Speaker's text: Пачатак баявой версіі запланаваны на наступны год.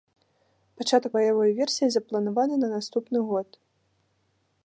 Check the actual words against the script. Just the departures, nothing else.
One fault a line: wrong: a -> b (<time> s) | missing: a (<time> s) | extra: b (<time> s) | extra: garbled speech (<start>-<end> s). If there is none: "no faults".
no faults